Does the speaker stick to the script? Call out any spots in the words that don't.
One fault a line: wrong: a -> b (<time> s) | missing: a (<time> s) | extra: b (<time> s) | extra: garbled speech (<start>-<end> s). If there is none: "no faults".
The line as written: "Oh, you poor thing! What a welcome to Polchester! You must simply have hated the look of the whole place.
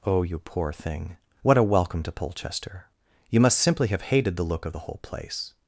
no faults